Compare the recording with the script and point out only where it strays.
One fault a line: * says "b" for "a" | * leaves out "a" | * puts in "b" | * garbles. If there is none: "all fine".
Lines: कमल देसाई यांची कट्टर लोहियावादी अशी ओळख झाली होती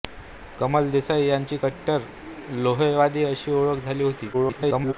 * garbles